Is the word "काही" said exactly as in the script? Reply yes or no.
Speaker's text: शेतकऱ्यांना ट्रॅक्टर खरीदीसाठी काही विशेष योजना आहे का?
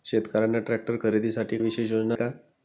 no